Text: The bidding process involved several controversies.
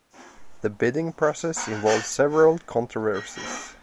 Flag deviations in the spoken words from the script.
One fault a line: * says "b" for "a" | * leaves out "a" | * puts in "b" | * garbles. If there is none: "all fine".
all fine